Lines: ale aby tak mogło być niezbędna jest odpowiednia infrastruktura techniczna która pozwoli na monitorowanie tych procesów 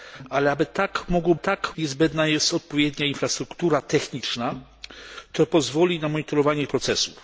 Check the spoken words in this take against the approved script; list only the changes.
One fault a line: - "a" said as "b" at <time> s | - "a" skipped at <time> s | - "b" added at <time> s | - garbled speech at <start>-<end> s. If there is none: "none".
- "być" said as "tak" at 1.3 s
- "tych" skipped at 6.7 s